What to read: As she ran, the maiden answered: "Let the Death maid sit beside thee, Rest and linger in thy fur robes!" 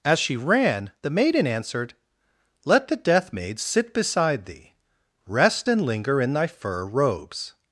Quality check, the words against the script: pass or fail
pass